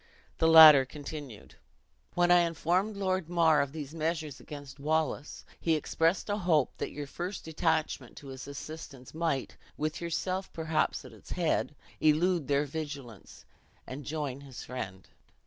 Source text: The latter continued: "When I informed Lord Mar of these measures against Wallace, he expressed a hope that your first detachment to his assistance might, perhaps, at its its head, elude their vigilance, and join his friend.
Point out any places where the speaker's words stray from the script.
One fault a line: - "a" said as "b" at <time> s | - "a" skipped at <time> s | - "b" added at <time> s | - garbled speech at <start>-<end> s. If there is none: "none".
- "with yourself" added at 9.8 s
- "its" skipped at 11.3 s